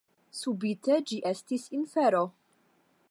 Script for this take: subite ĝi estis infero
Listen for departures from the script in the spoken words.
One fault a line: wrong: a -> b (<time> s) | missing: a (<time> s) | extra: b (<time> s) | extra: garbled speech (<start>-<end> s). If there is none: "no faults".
no faults